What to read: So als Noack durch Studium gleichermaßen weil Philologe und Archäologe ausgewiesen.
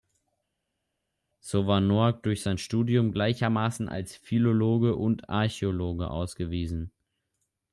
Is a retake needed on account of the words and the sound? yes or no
yes